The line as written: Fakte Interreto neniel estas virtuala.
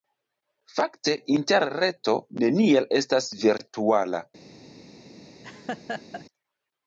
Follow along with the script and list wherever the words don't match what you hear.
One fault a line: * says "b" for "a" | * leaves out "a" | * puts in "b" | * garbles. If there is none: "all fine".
all fine